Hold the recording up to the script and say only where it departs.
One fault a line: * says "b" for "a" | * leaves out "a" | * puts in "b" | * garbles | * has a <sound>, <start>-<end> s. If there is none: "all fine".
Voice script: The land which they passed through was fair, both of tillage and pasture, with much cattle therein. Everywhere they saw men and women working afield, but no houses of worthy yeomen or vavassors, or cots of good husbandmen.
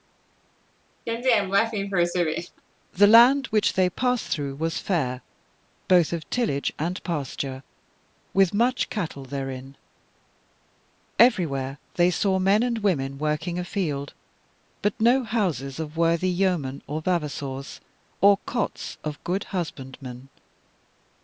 * has a laugh, 1.1-2.6 s